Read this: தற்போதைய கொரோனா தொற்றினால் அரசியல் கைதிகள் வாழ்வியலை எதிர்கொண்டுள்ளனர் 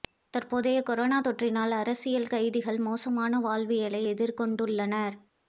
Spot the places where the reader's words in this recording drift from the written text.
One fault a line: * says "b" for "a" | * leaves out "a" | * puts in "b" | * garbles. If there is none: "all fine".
* puts in "மோசமான"